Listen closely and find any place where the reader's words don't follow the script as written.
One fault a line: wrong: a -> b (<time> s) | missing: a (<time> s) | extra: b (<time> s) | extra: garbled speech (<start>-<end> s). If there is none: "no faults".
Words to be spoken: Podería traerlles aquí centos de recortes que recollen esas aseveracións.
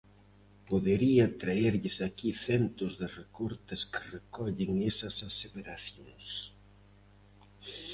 no faults